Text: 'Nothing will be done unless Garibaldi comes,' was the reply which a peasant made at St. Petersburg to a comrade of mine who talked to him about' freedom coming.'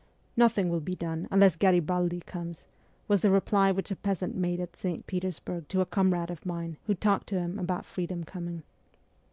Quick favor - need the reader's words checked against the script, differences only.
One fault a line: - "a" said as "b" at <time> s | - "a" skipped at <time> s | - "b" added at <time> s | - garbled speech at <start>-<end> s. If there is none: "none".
none